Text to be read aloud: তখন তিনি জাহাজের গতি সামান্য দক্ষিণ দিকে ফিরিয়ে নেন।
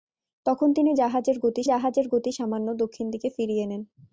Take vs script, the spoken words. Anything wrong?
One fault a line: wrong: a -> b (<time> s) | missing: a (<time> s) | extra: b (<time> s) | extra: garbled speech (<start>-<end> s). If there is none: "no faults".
extra: জাহাজের গতি (1.6 s)